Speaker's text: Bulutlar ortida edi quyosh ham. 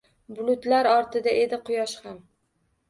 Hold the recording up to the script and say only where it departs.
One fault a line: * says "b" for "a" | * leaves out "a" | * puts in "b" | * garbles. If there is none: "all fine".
all fine